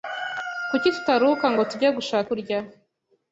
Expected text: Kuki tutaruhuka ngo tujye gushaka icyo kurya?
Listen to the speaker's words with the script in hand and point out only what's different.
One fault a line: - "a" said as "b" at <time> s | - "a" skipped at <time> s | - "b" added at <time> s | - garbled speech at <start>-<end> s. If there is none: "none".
- "icyo" skipped at 2.3 s